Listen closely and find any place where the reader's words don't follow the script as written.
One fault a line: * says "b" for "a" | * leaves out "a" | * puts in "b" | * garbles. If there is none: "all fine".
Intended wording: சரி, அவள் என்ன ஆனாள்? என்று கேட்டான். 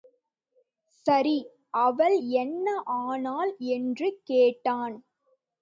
all fine